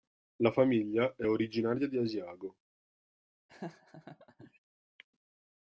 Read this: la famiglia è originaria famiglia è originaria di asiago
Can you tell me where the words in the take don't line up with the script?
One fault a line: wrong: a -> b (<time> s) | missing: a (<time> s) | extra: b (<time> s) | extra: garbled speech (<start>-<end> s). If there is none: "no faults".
missing: famiglia è originaria (1.9 s)